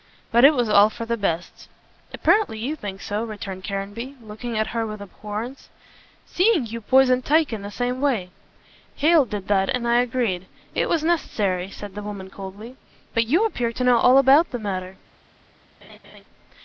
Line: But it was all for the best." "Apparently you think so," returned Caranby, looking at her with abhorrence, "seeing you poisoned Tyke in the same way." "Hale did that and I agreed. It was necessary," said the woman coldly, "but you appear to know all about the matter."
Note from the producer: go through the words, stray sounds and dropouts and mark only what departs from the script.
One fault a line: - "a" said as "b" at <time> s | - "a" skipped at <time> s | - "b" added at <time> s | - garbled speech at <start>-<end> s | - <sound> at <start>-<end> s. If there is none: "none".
- laugh at 15.8-16.2 s